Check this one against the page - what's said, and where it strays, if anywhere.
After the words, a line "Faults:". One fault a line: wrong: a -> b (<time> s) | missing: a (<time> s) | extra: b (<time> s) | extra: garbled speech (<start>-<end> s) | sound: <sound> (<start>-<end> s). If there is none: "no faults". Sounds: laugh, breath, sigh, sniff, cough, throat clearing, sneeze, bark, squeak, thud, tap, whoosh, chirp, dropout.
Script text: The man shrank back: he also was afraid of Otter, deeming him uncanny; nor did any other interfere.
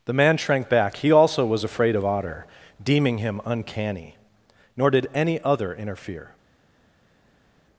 The man shrank back: he also was afraid of Otter, deeming him uncanny; nor did any other interfere.
Faults:
no faults